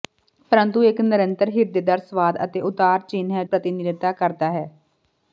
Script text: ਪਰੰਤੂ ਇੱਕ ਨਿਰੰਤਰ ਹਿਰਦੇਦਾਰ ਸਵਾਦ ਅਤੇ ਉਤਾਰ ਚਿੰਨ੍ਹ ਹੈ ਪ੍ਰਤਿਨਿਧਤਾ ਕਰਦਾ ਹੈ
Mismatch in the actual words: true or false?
false